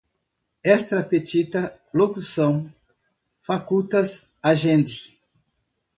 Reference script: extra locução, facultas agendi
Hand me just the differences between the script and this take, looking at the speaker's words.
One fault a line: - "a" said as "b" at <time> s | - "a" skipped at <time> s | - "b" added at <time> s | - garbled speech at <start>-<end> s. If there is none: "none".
- "petita" added at 1.0 s